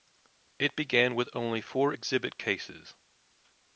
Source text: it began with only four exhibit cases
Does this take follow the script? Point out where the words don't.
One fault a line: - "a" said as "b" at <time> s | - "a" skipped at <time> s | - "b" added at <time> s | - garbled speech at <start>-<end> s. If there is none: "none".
none